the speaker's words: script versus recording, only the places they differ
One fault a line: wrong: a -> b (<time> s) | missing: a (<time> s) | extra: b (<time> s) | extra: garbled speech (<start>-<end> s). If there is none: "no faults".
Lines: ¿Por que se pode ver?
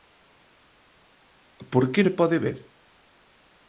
no faults